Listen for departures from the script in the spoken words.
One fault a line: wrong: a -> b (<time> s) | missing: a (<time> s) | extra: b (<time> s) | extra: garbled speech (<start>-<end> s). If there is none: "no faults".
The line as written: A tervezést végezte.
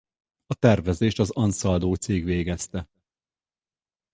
extra: az Ansaldo cég (1.2 s)